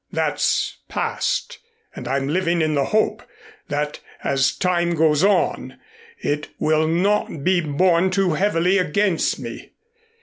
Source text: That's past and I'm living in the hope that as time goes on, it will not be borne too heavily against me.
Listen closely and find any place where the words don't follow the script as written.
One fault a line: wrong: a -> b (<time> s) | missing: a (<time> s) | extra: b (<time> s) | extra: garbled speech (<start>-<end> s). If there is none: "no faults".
no faults